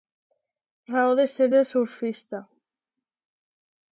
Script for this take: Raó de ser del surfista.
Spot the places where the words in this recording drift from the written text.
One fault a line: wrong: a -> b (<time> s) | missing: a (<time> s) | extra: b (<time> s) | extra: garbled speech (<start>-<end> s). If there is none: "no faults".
no faults